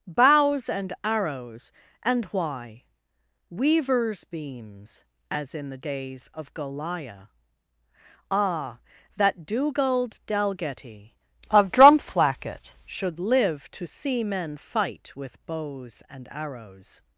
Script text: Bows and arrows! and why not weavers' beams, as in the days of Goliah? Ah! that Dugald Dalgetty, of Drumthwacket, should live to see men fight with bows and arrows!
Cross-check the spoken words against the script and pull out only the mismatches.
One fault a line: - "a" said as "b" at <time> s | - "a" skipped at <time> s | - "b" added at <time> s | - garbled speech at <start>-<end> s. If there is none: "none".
- "not" skipped at 2.9 s